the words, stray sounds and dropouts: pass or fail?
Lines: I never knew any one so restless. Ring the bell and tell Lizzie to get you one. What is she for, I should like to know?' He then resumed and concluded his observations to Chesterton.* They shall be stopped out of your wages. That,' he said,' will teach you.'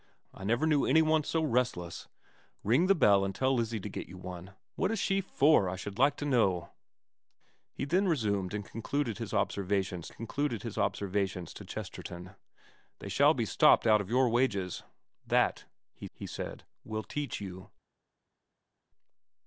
fail